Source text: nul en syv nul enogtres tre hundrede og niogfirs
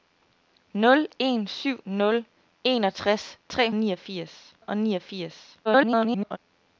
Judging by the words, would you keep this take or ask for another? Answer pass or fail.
fail